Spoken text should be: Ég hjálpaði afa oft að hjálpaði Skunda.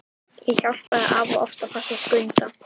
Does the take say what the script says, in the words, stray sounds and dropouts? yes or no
no